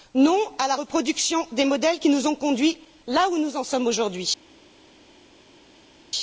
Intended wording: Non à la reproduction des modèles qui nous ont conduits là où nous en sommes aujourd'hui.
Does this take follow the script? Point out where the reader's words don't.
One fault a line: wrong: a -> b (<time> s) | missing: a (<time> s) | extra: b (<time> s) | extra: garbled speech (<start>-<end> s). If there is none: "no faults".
no faults